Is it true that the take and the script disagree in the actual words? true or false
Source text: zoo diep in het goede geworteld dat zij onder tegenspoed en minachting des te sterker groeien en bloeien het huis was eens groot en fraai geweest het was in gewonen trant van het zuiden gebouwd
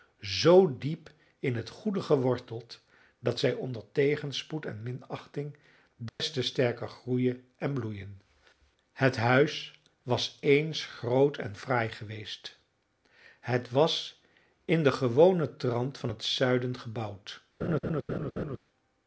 true